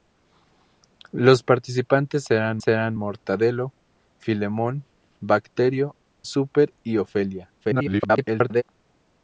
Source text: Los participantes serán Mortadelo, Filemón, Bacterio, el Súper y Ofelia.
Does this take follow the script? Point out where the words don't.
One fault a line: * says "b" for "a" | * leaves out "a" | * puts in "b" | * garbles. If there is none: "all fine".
* puts in "serán"
* leaves out "el"
* garbles